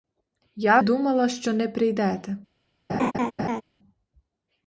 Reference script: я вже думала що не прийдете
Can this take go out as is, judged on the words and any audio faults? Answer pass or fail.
fail